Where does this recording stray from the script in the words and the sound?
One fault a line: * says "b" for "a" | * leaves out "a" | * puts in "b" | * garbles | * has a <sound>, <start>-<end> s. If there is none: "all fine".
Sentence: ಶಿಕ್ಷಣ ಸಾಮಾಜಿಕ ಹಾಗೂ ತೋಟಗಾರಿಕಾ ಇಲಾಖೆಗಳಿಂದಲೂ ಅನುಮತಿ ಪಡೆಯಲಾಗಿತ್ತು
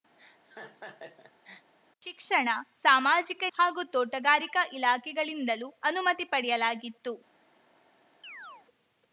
* has a laugh, 0.2-1.7 s
* has a chirp, 8.2-8.7 s